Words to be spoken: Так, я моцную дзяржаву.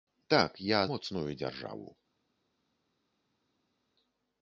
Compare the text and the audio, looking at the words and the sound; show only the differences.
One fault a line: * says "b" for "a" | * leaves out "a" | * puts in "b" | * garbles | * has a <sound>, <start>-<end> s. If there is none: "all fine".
all fine